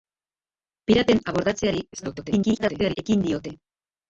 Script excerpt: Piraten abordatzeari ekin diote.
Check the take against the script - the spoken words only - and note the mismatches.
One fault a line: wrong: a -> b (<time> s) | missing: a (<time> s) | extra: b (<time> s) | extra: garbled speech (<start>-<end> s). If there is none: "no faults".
extra: garbled speech (1.9-3.0 s)